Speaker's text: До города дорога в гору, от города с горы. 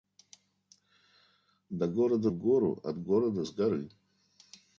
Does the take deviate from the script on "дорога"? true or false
true